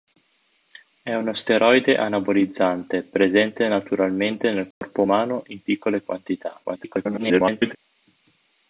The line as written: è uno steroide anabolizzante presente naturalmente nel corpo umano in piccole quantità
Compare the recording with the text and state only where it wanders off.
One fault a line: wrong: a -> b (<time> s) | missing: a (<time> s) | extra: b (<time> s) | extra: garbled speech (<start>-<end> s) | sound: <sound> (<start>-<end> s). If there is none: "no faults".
sound: dropout (4.7-4.8 s)
extra: garbled speech (6.6-7.8 s)